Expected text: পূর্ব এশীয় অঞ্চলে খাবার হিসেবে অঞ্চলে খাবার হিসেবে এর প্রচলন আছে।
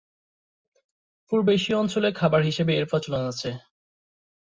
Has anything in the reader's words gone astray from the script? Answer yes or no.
yes